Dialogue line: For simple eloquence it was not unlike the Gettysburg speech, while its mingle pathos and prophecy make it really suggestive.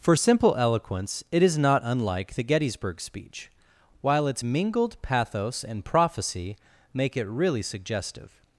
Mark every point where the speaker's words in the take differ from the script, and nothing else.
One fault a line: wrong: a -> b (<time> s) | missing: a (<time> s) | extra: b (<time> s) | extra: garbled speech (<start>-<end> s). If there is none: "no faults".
wrong: was -> is (1.4 s)
wrong: mingle -> mingled (4.4 s)